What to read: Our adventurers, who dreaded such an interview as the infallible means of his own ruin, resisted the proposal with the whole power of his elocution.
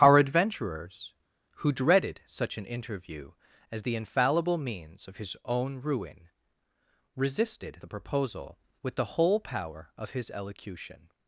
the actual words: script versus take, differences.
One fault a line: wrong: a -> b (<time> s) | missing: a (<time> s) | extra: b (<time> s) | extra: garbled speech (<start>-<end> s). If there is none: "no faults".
no faults